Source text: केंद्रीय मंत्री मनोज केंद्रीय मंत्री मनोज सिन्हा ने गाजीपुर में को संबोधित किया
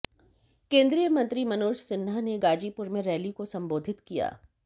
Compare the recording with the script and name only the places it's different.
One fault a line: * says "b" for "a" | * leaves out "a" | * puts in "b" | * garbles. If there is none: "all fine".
* leaves out "केंद्रीय मंत्री मनोज"
* puts in "रैली"